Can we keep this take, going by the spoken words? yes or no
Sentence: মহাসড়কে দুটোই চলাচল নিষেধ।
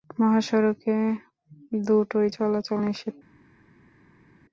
yes